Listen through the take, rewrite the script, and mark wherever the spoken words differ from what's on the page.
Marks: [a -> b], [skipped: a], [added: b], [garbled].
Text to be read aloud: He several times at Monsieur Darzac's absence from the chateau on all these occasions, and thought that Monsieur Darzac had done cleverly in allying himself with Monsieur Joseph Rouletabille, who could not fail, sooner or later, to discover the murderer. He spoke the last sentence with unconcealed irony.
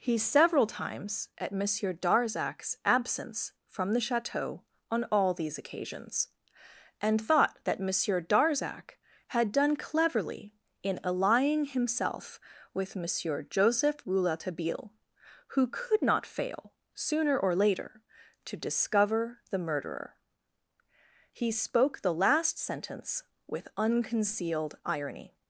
He several times at Monsieur Darzac's absence from the chateau on all these occasions, and thought that Monsieur Darzac had done cleverly in allying himself with Monsieur Joseph Rouletabille, who could not fail, sooner or later, to discover the murderer. He spoke the last sentence with unconcealed irony.